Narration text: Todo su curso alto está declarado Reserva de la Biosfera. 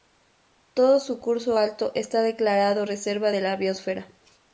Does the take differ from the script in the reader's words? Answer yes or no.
no